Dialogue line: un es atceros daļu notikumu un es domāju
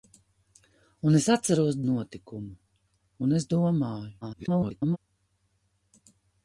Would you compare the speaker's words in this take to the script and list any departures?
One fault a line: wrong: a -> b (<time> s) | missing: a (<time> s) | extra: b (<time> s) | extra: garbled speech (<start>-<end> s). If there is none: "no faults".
missing: daļu (1.8 s)
extra: garbled speech (4.2-5.0 s)